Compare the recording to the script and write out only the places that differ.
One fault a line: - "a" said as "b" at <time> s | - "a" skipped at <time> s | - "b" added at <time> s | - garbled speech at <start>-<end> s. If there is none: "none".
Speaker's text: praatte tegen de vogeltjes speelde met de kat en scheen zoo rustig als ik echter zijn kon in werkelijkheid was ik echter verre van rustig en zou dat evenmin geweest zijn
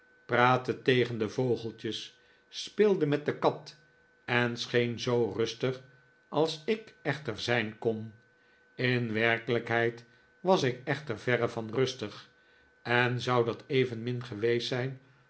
none